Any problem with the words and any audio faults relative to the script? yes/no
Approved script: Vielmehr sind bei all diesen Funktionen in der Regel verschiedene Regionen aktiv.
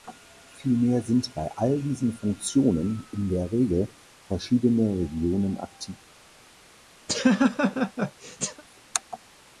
yes